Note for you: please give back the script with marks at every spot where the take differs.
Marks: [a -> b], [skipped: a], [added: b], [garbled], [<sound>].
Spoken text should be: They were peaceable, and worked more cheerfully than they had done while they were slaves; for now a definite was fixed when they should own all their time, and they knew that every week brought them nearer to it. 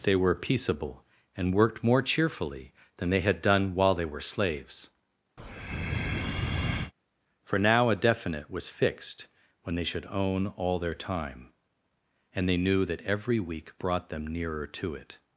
They were peaceable, and worked more cheerfully than they had done while they were slaves; [breath] for now a definite was fixed when they should own all their time, and they knew that every week brought them nearer to it.